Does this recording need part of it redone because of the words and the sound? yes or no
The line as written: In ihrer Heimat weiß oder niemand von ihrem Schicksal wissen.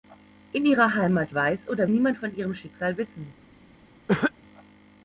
yes